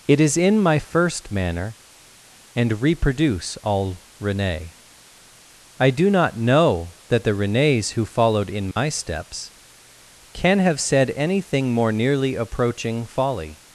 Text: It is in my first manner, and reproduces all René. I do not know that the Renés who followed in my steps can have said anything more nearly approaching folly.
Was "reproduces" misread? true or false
true